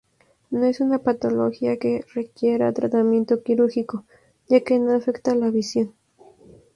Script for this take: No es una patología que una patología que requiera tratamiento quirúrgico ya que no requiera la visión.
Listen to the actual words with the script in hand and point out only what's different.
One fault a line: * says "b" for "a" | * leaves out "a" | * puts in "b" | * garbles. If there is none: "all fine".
* leaves out "una patología que"
* says "afecta" for "requiera"